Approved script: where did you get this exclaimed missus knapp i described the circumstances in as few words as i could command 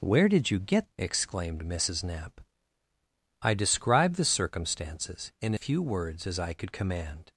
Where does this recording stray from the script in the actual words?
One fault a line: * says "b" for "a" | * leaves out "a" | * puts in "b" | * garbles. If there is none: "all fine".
* leaves out "this"
* leaves out "as"